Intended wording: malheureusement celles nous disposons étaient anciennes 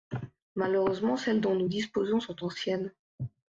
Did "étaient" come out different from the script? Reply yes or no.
yes